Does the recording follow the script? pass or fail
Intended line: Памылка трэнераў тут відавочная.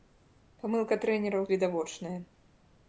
fail